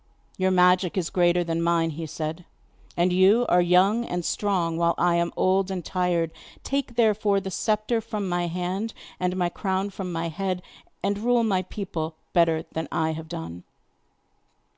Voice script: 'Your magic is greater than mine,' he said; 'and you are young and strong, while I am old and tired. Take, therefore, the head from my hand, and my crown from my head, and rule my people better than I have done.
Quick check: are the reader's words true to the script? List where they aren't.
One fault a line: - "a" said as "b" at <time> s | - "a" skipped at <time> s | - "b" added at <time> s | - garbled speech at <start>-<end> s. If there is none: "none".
- "head" said as "sceptre" at 7.5 s